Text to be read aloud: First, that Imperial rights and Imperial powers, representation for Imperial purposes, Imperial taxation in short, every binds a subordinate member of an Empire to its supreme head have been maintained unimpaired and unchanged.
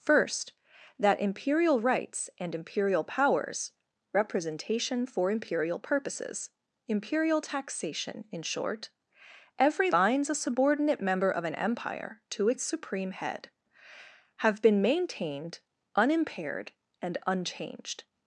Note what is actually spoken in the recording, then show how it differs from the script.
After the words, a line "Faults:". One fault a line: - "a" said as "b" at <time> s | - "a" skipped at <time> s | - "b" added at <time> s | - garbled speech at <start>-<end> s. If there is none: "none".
First, that Imperial rights and Imperial powers, representation for Imperial purposes, Imperial taxation in short, every binds a subordinate member of an Empire to its supreme head have been maintained unimpaired and unchanged.
Faults:
none